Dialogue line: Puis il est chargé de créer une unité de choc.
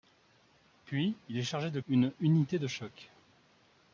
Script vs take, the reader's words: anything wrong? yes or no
yes